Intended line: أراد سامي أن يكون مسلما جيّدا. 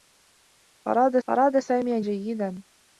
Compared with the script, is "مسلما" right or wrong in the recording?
wrong